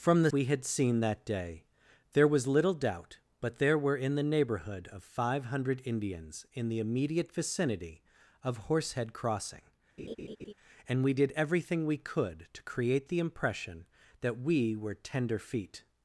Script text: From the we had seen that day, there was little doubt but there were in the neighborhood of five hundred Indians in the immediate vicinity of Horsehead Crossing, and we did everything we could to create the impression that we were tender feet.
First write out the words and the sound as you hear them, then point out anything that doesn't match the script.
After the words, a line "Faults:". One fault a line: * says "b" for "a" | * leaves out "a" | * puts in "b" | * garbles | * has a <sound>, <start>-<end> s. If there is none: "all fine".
From the we had seen that day, there was little doubt but there were in the neighborhood of five hundred Indians in the immediate vicinity of Horsehead Crossing, and we did everything we could to create the impression that we were tender feet.
Faults:
* has a laugh, 10.0-10.5 s